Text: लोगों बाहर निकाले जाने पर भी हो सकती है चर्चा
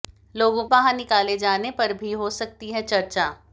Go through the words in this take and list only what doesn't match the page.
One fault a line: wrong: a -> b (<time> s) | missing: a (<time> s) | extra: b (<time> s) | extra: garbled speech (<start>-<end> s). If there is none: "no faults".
no faults